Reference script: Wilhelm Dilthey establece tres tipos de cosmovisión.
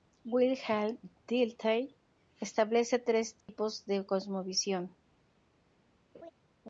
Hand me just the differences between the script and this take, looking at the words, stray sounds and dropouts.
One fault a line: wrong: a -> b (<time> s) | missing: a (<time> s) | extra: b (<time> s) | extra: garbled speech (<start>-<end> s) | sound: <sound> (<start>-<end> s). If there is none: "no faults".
sound: dropout (3.4-3.5 s)
sound: laugh (6.1-6.3 s)